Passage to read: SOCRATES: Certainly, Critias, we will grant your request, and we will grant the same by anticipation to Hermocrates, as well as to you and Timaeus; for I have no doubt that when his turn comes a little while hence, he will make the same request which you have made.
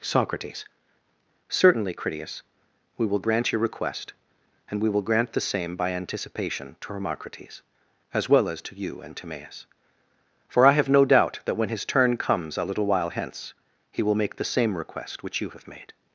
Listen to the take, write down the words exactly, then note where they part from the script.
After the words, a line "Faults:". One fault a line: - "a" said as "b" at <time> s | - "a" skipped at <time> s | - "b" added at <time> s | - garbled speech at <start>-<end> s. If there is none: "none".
SOCRATES: Certainly, Critias, we will grant your request, and we will grant the same by anticipation to Hermocrates, as well as to you and Timaeus; for I have no doubt that when his turn comes a little while hence, he will make the same request which you have made.
Faults:
none